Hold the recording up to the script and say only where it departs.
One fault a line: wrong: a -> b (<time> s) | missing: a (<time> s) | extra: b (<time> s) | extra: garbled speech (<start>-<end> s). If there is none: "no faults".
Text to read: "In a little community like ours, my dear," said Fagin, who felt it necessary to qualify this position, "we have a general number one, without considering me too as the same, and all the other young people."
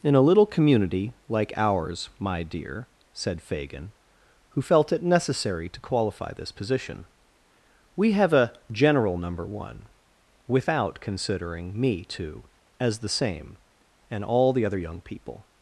no faults